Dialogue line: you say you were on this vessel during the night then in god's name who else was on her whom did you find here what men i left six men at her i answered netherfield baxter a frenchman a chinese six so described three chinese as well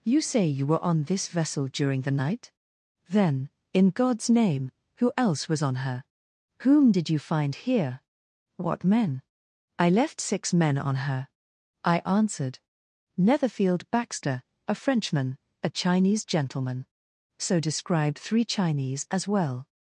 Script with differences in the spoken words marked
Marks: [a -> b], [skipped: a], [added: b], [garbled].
you say you were on this vessel during the night then in god's name who else was on her whom did you find here what men i left six men [at -> on] her i answered netherfield baxter a frenchman a chinese [six -> gentleman] so described three chinese as well